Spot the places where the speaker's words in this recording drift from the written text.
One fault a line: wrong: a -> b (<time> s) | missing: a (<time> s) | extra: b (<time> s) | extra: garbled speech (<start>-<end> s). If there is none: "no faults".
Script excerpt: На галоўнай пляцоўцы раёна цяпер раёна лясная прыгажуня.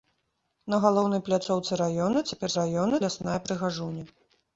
no faults